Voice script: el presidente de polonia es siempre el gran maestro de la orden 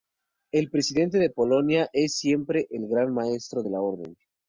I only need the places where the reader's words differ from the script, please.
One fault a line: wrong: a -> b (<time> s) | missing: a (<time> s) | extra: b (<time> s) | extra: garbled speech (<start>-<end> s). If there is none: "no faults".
no faults